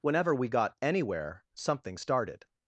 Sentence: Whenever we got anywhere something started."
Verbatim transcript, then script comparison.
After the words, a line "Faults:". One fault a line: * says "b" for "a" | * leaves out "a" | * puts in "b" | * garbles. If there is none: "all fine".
Whenever we got anywhere something started."
Faults:
all fine